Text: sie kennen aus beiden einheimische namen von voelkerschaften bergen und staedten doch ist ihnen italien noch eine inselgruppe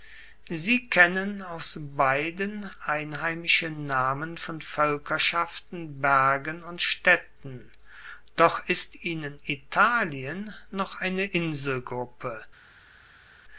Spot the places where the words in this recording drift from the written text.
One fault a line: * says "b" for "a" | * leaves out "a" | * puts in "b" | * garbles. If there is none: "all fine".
all fine